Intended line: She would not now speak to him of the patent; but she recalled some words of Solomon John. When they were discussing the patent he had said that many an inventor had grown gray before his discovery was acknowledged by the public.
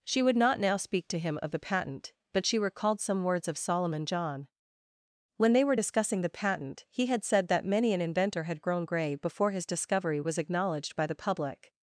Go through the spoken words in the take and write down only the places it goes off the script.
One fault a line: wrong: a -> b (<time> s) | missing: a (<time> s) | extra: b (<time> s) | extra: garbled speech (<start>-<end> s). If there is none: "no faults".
no faults